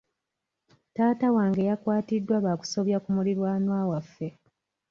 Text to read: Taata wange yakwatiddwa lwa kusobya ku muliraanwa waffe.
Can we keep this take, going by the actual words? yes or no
yes